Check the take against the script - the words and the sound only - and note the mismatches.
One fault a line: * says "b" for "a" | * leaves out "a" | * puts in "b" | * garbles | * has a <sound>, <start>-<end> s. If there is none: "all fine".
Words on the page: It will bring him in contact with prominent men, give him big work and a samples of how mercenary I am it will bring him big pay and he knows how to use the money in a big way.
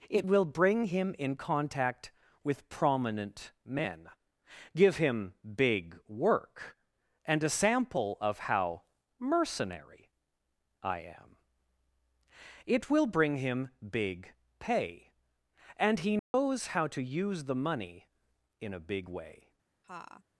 * says "sample" for "samples"
* has a dropout, 16.2-16.3 s
* has a laugh, 19.8-20.2 s